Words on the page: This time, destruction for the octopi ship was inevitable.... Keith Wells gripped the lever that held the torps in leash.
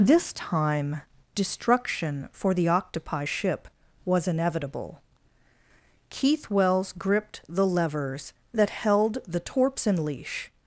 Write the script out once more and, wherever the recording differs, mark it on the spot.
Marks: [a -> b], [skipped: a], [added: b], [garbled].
This time, destruction for the octopi ship was inevitable.... Keith Wells gripped the [lever -> levers] that held the torps in leash.